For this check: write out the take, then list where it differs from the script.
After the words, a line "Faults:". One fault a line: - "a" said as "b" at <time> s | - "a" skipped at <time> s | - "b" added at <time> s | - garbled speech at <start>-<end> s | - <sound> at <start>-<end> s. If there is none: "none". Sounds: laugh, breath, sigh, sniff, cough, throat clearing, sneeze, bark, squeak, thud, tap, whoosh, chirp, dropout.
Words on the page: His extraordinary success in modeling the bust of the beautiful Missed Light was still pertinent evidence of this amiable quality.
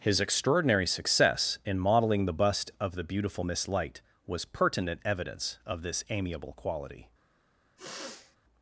His extraordinary success in modeling the bust of the beautiful Miss Light was pertinent evidence of this amiable quality.
Faults:
- "Missed" said as "Miss" at 3.4 s
- "still" skipped at 4.4 s
- sniff at 7.8-8.4 s